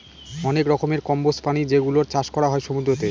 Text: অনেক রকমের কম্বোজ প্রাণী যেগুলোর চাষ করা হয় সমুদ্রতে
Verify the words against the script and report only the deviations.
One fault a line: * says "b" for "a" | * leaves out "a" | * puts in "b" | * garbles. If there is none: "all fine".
all fine